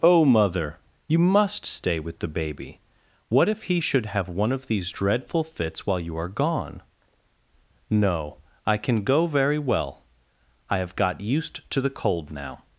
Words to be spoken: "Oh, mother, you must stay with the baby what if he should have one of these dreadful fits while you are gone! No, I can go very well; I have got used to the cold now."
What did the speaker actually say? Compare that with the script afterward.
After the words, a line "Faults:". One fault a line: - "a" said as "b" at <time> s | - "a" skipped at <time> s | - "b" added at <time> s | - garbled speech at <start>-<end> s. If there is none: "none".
"Oh, mother, you must stay with the baby what if he should have one of these dreadful fits while you are gone! No, I can go very well; I have got used to the cold now."
Faults:
none